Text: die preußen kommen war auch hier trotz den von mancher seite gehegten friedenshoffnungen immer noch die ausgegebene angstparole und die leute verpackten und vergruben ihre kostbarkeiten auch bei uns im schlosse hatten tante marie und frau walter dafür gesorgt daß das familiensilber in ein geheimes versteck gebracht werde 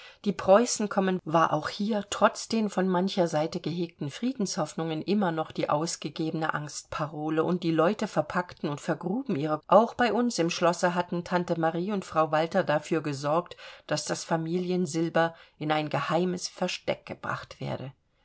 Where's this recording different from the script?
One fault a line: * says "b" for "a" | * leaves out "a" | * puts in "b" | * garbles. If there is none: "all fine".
* leaves out "kostbarkeiten"